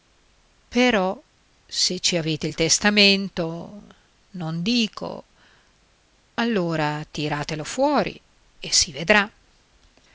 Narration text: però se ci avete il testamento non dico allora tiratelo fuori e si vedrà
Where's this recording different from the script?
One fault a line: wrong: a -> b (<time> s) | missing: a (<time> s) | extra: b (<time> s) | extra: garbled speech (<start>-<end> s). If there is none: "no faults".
no faults